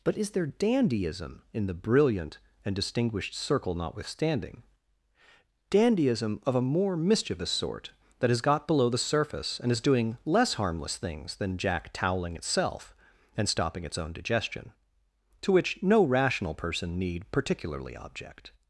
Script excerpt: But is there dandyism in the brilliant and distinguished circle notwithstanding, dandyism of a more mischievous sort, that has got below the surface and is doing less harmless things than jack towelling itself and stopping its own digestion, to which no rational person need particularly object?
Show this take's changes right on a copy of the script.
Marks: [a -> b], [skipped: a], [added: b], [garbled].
But is there dandyism in the brilliant and distinguished circle notwithstanding, dandyism of a more mischievous sort, that has got below the surface and is doing less harmless things than jack towelling itself and stopping its own digestion, to which no rational person need particularly object?